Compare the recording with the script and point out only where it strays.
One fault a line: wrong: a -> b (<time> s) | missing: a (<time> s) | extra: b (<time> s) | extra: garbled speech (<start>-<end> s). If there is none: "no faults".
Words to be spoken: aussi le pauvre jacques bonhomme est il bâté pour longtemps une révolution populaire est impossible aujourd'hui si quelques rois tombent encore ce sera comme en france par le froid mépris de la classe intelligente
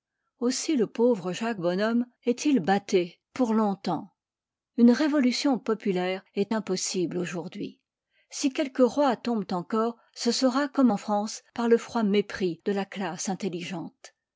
no faults